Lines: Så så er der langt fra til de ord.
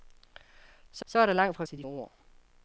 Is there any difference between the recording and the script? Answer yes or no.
no